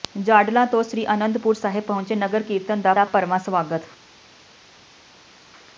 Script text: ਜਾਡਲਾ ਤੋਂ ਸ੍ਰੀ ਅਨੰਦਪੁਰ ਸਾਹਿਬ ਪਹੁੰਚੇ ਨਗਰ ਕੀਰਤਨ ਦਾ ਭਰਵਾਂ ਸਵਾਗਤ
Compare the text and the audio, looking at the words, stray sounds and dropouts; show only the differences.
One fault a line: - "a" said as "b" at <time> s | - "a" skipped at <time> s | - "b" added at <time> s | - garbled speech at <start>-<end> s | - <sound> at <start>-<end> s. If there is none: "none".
- "ਦਾ" added at 2.9 s